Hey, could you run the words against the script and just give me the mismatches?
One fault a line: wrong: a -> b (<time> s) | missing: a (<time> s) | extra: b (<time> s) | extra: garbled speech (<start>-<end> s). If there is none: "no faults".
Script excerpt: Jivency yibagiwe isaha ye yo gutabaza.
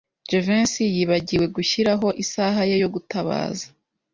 extra: gushyiraho (1.6 s)